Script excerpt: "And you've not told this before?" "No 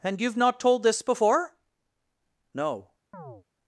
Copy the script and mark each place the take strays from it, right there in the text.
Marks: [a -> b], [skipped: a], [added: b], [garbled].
"And you've not told this before?" "No